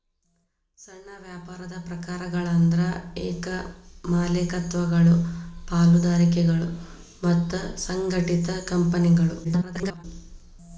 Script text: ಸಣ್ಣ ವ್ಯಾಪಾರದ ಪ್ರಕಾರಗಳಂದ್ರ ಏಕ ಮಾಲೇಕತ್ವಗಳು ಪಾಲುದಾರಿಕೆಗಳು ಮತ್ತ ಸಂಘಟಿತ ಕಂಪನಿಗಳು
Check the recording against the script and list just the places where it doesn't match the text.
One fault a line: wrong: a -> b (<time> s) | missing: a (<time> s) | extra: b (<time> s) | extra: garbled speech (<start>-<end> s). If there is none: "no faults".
extra: garbled speech (9.4-10.0 s)